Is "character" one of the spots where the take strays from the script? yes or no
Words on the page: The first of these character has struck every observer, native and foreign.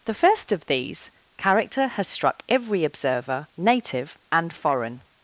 no